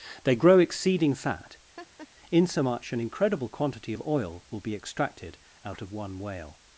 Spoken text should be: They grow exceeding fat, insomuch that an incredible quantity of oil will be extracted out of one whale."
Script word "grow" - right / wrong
right